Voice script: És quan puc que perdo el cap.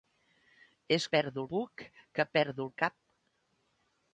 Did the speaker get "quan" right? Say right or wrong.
wrong